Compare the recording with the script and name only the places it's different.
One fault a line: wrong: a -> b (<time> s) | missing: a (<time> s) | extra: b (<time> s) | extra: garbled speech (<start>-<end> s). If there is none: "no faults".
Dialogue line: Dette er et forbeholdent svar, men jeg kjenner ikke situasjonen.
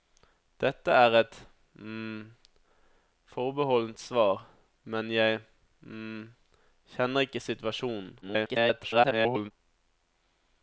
extra: garbled speech (8.2-9.5 s)